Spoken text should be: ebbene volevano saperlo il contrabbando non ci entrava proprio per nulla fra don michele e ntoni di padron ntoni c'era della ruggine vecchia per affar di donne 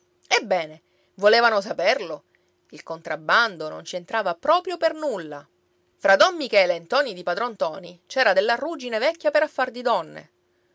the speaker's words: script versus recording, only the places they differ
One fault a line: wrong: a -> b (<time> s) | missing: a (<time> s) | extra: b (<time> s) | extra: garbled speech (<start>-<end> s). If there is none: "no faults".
no faults